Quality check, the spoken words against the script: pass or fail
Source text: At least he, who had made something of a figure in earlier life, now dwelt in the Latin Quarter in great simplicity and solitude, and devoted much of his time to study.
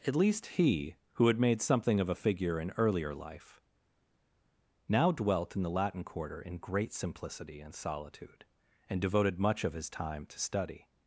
pass